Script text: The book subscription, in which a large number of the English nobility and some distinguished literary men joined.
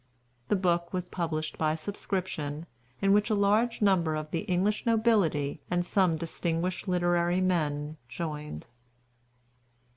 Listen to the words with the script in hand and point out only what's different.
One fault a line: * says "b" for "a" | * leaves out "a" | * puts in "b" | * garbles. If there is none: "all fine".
* puts in "was published by"